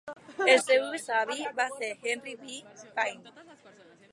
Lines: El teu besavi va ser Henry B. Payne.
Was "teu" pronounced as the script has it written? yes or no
no